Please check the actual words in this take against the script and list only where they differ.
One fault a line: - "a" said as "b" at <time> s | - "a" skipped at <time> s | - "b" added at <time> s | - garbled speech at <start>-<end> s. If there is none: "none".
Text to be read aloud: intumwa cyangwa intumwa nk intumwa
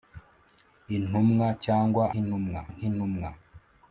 none